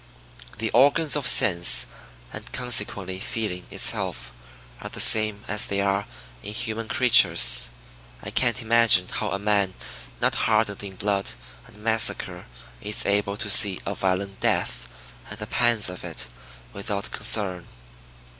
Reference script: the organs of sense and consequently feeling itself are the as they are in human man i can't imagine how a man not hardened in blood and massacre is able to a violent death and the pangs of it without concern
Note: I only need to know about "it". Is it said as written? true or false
true